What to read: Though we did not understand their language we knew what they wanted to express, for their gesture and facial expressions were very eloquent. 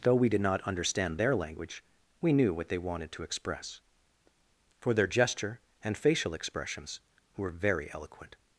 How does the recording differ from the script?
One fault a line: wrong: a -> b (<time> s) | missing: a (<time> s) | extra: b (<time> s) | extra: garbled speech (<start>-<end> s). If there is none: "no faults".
no faults